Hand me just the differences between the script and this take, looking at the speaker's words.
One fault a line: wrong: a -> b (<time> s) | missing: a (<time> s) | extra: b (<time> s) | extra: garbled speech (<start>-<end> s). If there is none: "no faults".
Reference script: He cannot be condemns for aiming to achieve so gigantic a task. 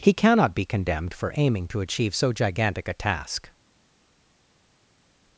wrong: condemns -> condemned (0.7 s)